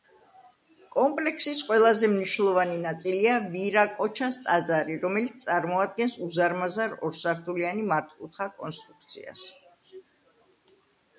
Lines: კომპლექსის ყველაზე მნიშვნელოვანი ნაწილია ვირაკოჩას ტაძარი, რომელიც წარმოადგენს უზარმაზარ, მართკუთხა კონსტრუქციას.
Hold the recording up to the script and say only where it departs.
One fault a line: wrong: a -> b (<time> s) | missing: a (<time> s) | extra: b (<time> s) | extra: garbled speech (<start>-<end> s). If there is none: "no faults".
extra: ორსართულიანი (7.1 s)